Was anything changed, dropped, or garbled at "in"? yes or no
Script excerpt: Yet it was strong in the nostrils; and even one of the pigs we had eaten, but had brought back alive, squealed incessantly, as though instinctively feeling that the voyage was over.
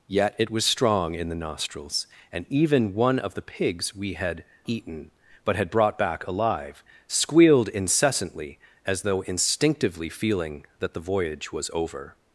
no